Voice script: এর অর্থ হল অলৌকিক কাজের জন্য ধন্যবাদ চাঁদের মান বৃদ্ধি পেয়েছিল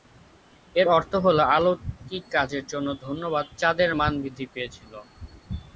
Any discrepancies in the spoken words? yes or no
no